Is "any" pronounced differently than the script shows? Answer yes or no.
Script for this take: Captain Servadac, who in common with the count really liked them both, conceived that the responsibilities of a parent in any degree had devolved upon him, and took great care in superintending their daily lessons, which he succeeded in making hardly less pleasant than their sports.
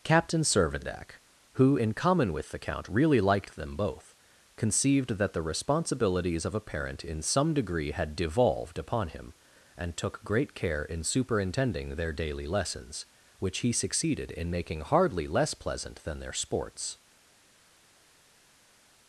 yes